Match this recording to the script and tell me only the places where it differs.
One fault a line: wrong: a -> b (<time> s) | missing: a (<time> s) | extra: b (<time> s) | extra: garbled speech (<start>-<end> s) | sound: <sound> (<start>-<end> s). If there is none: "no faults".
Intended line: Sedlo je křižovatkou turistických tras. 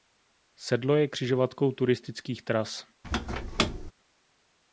sound: squeak (3.0-3.9 s)